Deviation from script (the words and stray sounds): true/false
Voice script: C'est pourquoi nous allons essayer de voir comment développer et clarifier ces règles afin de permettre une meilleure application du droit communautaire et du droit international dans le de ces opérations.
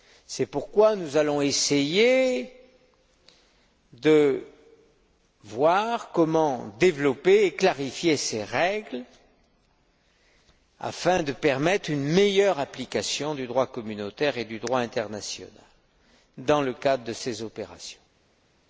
true